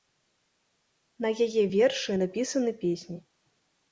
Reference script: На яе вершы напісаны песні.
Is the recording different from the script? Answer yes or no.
no